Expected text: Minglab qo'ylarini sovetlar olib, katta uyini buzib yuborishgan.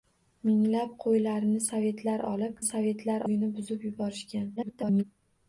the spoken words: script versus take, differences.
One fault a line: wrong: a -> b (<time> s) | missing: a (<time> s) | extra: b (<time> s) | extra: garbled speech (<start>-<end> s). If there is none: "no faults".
wrong: katta -> sovetlar (2.7 s)
extra: garbled speech (4.6-5.0 s)